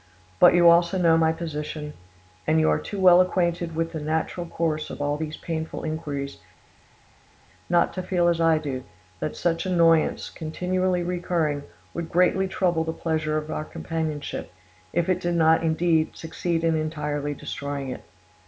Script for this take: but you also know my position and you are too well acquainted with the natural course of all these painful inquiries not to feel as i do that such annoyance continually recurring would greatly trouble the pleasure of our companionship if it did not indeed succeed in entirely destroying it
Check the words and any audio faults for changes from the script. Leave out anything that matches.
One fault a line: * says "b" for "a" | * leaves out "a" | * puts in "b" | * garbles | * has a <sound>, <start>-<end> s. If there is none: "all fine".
all fine